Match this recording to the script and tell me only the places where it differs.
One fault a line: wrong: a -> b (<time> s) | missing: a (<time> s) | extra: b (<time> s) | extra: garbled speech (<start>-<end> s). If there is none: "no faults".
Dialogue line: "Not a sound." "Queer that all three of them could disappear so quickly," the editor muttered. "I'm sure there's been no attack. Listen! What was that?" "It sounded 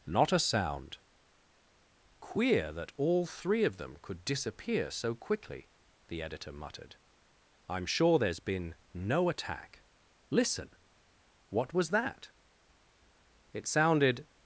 no faults